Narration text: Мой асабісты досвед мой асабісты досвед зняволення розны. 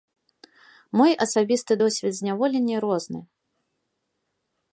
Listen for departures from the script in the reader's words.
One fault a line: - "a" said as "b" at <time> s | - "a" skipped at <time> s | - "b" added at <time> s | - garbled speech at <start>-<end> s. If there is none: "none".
- "мой асабісты досвед" skipped at 2.1 s